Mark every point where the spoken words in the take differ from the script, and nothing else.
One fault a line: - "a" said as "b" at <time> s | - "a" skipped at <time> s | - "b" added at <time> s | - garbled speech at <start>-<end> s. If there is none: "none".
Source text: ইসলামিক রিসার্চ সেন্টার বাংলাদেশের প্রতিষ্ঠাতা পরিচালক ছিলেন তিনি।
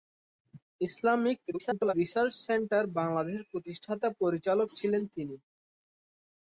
- garbled speech at 1.5-1.9 s